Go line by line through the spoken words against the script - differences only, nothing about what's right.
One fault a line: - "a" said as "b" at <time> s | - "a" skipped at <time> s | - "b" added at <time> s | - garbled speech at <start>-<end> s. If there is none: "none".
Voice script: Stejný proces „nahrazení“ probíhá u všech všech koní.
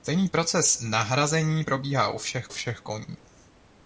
none